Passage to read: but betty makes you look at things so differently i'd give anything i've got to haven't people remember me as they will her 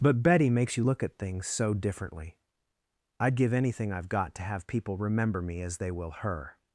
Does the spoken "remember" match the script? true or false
true